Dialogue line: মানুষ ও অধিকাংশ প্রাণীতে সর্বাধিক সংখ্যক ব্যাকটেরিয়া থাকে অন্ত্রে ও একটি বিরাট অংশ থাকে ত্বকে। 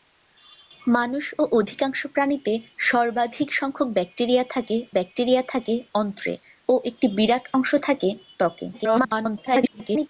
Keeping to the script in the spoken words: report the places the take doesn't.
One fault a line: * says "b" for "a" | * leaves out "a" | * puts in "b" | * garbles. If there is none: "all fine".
* puts in "ব্যাকটেরিয়া থাকে"
* garbles